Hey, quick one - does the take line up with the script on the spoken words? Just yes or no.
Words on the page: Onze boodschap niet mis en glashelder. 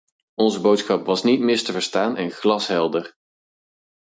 no